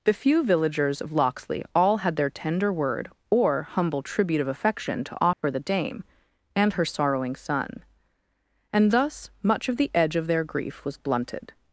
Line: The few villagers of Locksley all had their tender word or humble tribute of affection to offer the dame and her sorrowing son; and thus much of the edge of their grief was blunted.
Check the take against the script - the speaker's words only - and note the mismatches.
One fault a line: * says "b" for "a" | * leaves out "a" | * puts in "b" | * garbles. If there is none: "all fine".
all fine